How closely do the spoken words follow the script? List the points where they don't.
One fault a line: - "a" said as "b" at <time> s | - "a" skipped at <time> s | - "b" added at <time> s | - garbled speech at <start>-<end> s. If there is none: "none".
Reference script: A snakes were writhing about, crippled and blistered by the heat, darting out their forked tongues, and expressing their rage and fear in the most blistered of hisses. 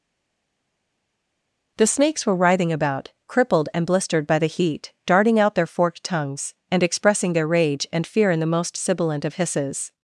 - "A" said as "The" at 1.8 s
- "blistered" said as "sibilant" at 8.7 s